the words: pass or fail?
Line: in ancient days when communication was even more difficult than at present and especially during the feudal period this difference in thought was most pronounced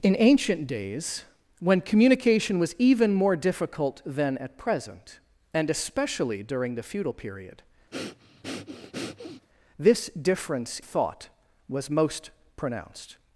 fail